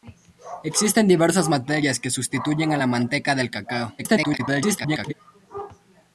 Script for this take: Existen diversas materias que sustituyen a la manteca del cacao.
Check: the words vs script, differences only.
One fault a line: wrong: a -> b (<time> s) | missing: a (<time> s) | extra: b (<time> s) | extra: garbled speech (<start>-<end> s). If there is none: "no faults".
extra: garbled speech (4.0-5.1 s)